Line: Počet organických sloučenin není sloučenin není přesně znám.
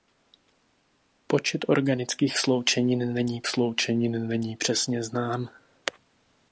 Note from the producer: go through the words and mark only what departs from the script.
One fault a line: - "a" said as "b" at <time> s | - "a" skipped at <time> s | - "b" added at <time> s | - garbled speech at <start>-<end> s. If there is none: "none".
none